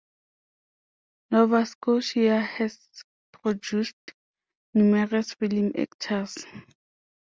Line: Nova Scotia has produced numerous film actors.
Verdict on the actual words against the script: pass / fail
pass